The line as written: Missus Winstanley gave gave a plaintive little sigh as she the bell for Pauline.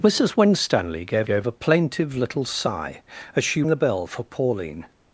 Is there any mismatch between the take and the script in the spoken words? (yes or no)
no